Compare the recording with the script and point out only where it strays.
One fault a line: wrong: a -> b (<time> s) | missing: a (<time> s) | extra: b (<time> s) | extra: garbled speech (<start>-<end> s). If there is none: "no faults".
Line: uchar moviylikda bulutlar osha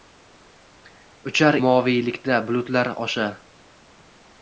no faults